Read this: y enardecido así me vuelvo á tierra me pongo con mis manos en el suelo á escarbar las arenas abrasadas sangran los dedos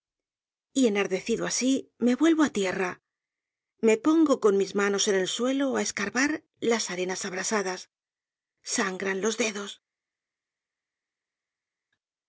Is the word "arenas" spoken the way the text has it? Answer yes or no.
yes